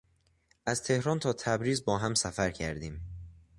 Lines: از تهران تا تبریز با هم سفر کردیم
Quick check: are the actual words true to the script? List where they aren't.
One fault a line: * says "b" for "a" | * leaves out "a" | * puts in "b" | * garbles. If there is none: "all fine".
all fine